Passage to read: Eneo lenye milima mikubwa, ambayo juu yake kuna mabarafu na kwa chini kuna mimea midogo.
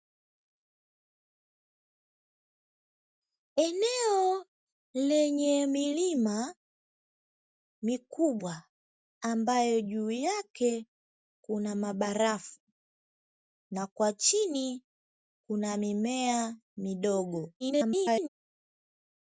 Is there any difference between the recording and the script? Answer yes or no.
yes